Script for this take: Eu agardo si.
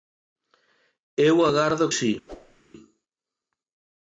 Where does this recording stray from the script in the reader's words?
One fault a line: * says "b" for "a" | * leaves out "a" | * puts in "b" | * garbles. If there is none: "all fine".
all fine